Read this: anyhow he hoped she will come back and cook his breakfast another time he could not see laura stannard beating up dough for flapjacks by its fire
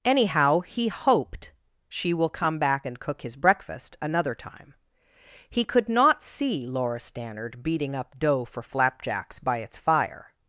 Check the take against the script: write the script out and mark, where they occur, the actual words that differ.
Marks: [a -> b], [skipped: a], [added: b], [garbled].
anyhow he hoped she will come back and cook his breakfast another time he could not see laura stannard beating up dough for flapjacks by its fire